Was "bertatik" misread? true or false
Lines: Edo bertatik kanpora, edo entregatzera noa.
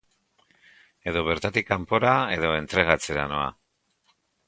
false